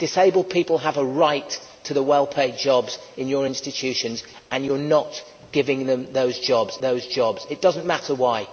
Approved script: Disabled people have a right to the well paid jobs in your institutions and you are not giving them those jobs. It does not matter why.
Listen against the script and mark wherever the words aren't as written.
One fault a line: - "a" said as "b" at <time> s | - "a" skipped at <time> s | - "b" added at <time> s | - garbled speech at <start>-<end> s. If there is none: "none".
- "those jobs" added at 6.8 s